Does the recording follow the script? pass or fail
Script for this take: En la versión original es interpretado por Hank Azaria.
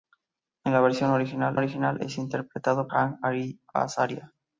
fail